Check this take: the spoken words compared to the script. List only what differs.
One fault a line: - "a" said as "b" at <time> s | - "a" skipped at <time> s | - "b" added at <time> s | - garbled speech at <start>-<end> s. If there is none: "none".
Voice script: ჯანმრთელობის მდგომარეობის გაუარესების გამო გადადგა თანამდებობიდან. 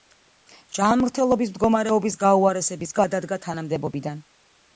- "გამო" skipped at 3.0 s